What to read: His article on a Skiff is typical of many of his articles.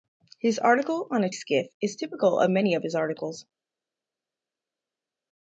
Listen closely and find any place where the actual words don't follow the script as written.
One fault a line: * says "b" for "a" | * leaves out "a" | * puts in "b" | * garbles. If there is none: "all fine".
all fine